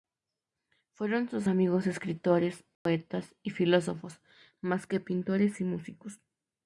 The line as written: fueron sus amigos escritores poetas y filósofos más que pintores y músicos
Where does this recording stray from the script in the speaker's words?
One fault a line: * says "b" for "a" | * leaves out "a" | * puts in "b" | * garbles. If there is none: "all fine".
all fine